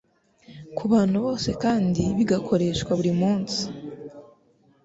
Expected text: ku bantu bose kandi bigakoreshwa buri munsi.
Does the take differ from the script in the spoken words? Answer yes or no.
no